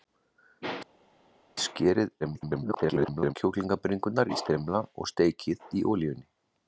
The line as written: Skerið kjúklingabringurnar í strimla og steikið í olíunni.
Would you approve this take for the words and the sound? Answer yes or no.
no